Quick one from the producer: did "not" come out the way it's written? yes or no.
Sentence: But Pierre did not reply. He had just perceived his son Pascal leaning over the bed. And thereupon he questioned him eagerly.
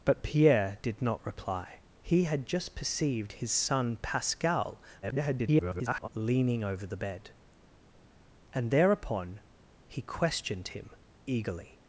yes